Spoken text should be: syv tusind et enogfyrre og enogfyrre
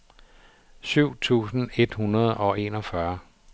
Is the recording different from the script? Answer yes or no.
yes